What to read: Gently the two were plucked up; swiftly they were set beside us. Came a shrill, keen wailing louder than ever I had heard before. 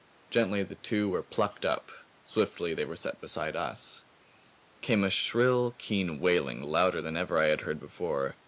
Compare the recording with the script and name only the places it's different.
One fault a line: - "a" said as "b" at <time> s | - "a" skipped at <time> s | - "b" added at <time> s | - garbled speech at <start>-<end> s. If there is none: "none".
none